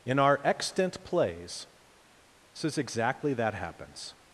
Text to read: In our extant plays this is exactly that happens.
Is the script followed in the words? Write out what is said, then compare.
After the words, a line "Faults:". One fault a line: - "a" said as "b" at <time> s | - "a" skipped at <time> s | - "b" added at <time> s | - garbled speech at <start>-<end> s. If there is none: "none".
In our extant plays this is exactly that happens.
Faults:
none